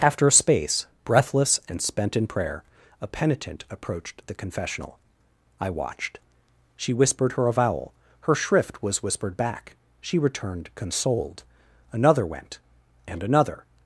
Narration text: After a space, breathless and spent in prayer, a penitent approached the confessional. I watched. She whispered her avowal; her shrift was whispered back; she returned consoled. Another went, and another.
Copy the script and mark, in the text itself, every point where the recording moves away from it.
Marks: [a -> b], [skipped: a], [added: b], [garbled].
After a space, breathless and spent in prayer, a penitent approached the confessional. I watched. She whispered her avowal; her shrift was whispered back; she returned consoled. Another went, and another.